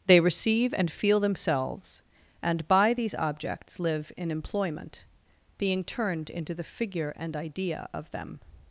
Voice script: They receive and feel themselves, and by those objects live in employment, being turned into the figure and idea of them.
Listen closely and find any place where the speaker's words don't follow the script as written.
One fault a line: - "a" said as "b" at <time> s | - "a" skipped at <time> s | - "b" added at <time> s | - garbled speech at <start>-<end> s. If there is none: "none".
- "those" said as "these" at 2.9 s